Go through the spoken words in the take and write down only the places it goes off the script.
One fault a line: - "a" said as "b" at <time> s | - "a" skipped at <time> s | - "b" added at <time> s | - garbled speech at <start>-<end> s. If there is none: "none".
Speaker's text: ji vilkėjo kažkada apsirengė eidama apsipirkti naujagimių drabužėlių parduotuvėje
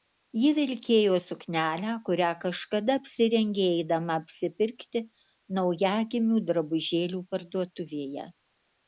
- "suknelę kurią" added at 1.2 s